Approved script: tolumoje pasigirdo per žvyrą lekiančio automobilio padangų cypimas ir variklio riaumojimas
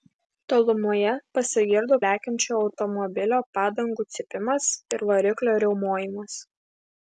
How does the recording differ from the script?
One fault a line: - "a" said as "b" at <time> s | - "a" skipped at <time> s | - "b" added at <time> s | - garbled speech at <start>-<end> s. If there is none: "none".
- "per žvyrą" skipped at 2.0 s